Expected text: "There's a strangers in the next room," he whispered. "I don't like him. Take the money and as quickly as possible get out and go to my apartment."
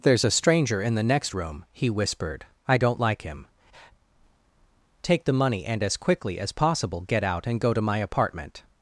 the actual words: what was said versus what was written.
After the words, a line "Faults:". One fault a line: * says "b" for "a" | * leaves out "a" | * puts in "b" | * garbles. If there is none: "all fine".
"There's a stranger in the next room," he whispered. "I don't like him. Take the money and as quickly as possible get out and go to my apartment."
Faults:
* says "stranger" for "strangers"